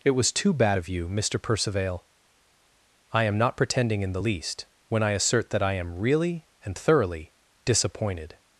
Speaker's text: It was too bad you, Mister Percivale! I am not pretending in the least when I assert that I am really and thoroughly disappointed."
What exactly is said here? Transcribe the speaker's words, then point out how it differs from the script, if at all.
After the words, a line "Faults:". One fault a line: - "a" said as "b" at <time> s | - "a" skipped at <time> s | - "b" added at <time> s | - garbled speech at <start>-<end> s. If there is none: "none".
It was too bad of you, Mister Percivale! I am not pretending in the least when I assert that I am really and thoroughly disappointed."
Faults:
- "of" added at 0.8 s